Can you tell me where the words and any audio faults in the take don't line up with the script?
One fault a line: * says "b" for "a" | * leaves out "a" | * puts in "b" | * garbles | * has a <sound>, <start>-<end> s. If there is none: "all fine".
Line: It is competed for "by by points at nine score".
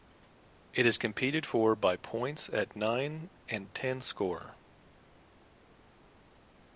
* leaves out "by"
* puts in "and ten"